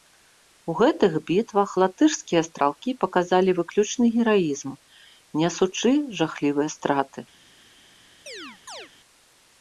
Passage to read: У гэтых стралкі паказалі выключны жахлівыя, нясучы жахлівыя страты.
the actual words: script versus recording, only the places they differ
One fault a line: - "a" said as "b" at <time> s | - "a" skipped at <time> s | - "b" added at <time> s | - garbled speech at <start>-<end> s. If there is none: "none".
- "бітвах латышскія" added at 1.3 s
- "жахлівыя" said as "гераізм" at 4.1 s